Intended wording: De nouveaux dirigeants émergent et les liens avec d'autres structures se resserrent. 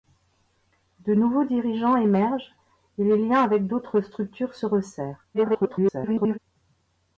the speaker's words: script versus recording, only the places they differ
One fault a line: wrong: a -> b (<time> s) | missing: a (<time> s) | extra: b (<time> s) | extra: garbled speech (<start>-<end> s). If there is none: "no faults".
extra: garbled speech (5.3-6.4 s)